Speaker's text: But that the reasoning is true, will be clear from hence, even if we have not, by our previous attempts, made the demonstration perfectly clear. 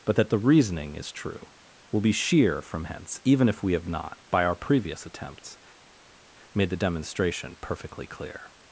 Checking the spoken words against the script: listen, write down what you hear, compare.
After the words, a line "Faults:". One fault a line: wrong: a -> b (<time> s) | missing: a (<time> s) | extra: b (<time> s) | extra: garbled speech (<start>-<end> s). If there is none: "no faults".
But that the reasoning is true, will be sheer from hence, even if we have not, by our previous attempts, made the demonstration perfectly clear.
Faults:
wrong: clear -> sheer (2.1 s)